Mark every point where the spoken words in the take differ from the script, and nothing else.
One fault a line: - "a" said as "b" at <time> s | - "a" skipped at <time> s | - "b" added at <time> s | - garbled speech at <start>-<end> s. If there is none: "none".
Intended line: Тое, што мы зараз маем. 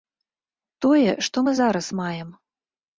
none